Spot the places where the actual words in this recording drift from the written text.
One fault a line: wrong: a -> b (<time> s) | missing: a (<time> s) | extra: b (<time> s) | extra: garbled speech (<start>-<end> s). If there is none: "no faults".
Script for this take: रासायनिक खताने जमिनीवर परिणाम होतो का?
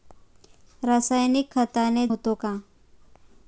missing: जमिनीवर परिणाम (2.1 s)